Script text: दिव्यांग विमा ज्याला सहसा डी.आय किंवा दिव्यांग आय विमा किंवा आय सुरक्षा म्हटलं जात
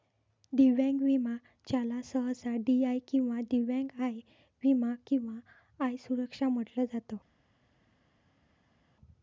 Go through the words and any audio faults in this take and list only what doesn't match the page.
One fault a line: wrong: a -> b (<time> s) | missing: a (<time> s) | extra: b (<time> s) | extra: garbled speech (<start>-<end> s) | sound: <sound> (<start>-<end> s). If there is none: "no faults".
no faults